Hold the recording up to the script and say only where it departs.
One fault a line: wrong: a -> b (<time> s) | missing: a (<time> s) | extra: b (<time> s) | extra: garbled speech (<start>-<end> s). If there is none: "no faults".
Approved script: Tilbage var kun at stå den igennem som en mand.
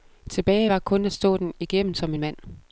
no faults